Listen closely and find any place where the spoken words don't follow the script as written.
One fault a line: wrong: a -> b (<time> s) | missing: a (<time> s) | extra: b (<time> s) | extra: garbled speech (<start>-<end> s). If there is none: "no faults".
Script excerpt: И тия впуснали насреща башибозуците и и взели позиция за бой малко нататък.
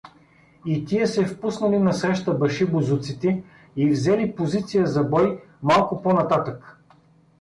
extra: се (1.1 s)
missing: и (3.9 s)
extra: по (6.0 s)